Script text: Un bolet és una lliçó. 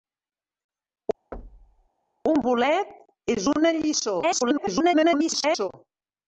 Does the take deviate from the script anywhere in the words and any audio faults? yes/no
yes